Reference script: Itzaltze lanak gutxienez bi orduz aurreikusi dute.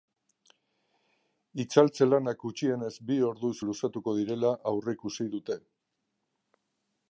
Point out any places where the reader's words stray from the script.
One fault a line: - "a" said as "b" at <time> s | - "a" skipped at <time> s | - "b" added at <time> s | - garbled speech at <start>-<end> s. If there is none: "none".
- "luzatuko direla" added at 3.7 s